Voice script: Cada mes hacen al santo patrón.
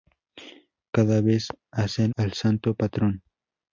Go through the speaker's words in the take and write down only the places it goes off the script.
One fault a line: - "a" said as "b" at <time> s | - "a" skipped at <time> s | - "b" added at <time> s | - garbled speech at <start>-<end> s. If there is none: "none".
none